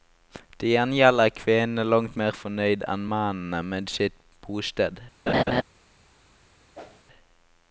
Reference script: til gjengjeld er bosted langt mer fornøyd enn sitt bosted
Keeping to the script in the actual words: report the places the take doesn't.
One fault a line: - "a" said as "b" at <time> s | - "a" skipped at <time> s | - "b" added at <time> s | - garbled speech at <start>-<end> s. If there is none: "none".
- "bosted" said as "kvinnene" at 1.4 s
- "mennene med" added at 3.2 s